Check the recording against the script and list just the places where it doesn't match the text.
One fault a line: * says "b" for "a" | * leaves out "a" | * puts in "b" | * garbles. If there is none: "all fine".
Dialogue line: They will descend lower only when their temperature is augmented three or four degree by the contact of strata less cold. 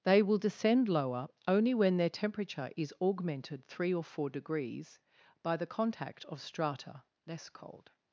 * says "degrees" for "degree"